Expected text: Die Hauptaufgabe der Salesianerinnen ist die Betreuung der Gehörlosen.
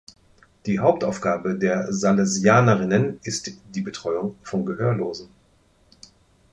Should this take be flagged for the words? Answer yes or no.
yes